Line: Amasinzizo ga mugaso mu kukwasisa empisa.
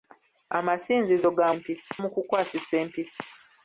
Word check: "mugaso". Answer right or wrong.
wrong